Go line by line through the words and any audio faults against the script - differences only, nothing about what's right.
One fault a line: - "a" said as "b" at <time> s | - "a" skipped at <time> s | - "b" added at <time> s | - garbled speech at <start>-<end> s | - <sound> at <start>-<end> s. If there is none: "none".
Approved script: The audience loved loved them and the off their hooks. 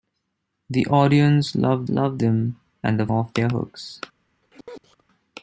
- sneeze at 4.4-5.0 s